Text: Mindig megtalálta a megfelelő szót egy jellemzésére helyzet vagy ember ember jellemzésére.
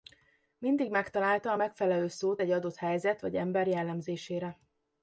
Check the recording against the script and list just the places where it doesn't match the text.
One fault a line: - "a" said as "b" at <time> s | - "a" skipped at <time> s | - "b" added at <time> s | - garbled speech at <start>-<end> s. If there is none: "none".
- "jellemzésére" said as "adott" at 2.5 s
- "ember" skipped at 3.7 s